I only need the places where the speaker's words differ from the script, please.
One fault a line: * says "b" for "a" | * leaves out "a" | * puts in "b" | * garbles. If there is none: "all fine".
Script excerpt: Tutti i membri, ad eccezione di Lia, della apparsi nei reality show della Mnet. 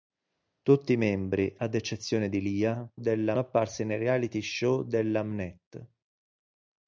all fine